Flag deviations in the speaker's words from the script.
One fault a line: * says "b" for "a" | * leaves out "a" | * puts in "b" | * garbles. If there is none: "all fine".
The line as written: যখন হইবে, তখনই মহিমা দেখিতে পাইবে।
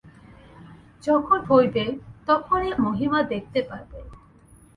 all fine